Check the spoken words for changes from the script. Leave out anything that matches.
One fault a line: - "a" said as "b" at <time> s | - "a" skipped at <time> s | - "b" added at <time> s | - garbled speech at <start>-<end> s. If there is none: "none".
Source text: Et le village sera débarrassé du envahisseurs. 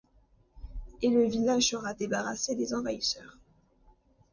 - "du" said as "des" at 2.5 s